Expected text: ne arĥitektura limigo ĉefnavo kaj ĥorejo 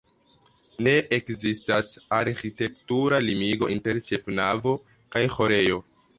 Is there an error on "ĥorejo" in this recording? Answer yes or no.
no